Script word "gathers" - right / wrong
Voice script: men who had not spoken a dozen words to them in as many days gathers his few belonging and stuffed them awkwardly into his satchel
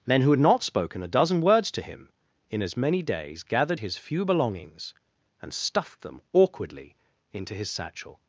wrong